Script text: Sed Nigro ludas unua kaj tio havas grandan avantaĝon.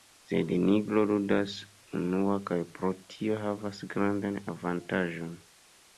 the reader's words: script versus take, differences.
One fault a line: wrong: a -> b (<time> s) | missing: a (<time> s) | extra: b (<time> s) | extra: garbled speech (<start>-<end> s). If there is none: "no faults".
extra: pro (2.8 s)